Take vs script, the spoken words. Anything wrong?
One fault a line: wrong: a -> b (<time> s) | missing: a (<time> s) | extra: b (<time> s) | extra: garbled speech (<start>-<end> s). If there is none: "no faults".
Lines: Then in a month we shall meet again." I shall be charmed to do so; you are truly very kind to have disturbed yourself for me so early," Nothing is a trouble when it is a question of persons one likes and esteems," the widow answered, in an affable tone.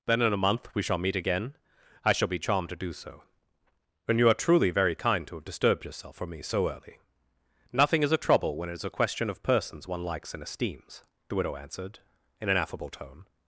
extra: and (4.1 s)